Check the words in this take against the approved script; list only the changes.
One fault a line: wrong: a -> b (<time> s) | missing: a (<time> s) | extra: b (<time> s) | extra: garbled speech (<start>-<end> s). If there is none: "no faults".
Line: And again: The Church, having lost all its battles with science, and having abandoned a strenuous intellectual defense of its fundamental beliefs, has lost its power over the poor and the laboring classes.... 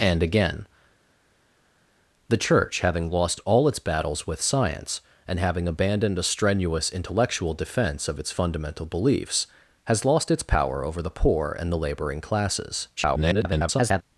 extra: garbled speech (13.0-14.0 s)